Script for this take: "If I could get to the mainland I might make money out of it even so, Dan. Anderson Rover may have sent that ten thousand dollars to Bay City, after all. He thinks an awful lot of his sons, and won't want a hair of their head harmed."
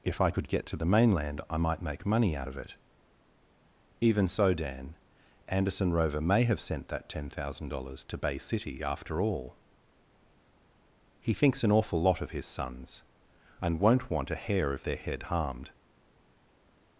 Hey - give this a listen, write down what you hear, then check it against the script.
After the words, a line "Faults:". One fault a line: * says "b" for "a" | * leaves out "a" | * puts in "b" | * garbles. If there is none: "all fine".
"If I could get to the mainland I might make money out of it even so, Dan. Anderson Rover may have sent that ten thousand dollars to Bay City, after all. He thinks an awful lot of his sons, and won't want a hair of their head harmed."
Faults:
all fine